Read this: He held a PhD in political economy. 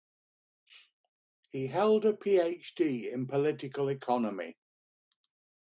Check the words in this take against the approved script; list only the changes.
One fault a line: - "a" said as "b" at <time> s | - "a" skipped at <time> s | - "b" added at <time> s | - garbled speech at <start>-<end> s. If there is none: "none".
none